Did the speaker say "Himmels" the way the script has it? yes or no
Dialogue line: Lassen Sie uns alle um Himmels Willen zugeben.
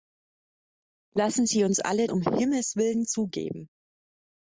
yes